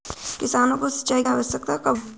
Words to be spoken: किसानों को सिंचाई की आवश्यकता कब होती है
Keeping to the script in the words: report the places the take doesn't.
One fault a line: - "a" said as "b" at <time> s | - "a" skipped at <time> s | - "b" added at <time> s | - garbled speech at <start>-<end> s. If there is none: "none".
- "की" skipped at 1.2 s
- "होती" skipped at 2.0 s